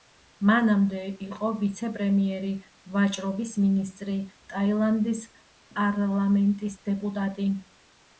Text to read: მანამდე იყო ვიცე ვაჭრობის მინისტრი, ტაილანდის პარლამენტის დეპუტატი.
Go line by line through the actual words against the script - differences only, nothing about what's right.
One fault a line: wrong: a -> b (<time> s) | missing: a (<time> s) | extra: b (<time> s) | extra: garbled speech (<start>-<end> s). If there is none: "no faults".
extra: პრემიერი (2.0 s)